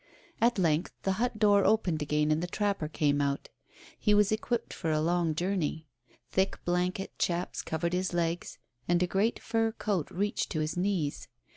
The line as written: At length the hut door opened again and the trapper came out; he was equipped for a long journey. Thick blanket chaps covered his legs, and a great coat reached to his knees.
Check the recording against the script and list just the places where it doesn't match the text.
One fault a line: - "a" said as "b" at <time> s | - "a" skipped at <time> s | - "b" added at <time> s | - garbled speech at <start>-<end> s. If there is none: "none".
- "fur" added at 9.4 s